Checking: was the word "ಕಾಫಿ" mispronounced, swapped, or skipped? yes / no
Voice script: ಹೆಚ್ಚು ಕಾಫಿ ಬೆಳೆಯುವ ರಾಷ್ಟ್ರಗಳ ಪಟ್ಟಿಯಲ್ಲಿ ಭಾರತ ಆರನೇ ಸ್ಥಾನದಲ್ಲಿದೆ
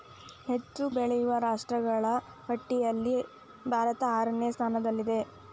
yes